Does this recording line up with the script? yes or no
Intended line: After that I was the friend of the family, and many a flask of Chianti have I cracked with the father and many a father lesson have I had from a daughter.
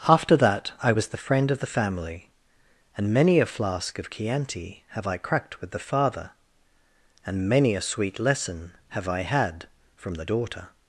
no